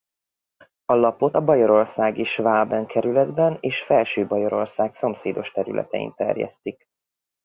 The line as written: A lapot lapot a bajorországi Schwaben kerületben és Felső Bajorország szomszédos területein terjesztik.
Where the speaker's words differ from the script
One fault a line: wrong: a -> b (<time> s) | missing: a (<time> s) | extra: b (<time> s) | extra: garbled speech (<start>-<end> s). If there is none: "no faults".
missing: lapot (1.4 s)